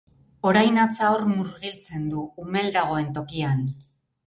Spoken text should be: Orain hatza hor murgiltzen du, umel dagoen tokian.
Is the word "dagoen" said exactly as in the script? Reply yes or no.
yes